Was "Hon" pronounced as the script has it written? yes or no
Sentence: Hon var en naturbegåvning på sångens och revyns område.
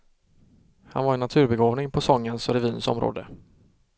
no